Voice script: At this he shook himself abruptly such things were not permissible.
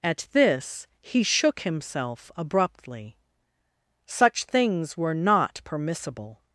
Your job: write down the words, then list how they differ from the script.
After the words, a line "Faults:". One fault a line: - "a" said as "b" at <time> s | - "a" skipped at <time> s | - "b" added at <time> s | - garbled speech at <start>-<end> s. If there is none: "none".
At this he shook himself abruptly such things were not permissible.
Faults:
none